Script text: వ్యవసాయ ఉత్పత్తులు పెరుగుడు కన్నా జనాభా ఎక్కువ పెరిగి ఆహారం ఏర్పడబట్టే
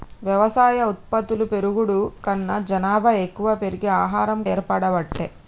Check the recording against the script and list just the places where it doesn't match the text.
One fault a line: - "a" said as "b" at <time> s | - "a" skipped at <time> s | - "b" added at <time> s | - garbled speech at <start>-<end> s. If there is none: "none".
none